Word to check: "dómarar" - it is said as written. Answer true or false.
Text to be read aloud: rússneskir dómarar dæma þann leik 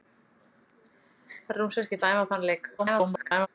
false